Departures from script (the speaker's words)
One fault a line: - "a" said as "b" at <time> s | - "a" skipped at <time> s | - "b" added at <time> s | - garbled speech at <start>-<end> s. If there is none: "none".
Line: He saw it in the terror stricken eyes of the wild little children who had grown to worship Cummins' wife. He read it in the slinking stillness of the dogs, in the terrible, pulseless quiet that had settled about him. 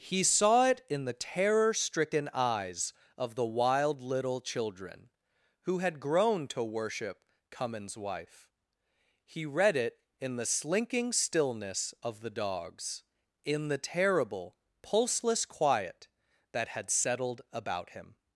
none